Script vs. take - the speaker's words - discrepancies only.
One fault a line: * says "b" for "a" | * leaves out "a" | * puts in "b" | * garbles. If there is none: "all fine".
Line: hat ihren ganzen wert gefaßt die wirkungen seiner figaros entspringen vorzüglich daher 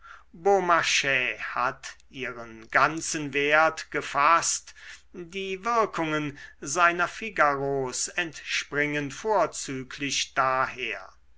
all fine